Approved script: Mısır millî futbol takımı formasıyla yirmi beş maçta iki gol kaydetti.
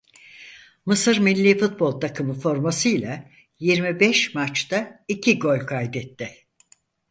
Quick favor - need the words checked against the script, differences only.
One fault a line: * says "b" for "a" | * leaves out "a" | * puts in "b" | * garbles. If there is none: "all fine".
all fine